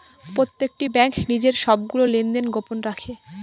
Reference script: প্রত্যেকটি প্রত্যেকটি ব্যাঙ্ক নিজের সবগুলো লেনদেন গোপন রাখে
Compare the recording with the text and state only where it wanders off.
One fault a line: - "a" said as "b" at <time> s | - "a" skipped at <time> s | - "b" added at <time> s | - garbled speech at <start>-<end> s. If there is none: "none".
- "প্রত্যেকটি" skipped at 0.9 s